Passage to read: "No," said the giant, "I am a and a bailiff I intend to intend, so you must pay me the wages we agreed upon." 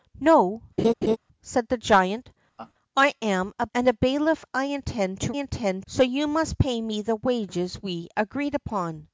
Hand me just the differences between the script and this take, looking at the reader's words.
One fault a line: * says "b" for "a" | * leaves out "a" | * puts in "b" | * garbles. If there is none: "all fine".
all fine